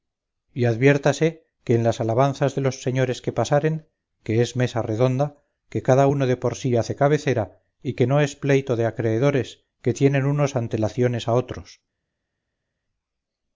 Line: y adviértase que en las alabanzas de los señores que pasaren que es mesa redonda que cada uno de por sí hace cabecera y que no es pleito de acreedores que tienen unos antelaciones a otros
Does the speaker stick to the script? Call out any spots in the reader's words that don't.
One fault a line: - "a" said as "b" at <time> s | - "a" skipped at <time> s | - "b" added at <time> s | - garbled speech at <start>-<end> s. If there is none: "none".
none